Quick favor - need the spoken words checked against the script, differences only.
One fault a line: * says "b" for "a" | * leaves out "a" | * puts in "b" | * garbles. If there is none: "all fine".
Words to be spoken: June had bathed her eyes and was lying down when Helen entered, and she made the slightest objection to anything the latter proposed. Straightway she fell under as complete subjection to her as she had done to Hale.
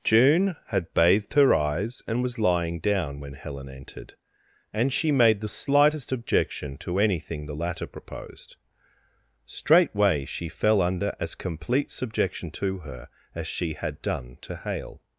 all fine